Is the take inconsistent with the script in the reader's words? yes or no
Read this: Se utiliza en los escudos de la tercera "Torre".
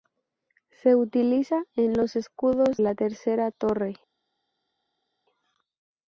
yes